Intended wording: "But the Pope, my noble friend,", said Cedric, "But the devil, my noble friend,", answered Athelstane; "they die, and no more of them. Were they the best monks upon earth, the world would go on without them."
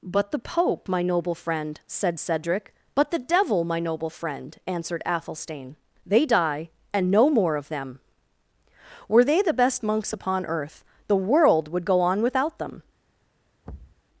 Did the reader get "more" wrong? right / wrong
right